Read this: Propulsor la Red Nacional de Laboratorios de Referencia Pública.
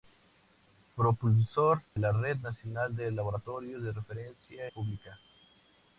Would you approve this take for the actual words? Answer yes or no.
yes